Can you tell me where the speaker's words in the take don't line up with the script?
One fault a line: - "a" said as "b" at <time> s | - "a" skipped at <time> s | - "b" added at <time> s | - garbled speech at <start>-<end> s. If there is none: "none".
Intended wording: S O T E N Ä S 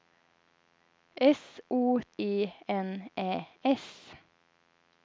- "T" skipped at 2.0 s